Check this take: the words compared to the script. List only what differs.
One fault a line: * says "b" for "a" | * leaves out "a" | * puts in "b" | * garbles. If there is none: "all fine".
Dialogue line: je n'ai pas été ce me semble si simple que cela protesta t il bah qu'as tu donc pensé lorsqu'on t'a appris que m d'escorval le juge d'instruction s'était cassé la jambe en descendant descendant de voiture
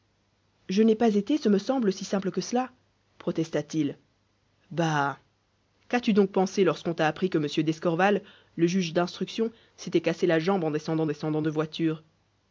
all fine